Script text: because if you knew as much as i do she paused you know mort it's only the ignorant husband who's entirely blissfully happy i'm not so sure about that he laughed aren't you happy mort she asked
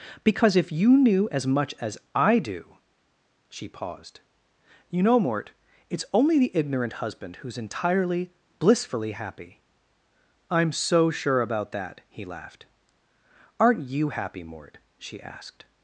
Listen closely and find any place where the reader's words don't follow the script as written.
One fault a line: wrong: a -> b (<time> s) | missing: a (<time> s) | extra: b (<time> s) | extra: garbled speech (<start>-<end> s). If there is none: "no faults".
missing: not (10.7 s)